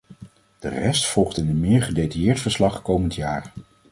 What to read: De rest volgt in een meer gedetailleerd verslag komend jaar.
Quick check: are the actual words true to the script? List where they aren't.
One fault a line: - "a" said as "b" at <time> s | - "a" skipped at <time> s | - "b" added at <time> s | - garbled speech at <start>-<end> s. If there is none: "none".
none